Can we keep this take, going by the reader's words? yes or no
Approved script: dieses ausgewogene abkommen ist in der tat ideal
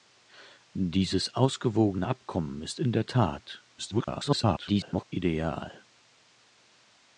no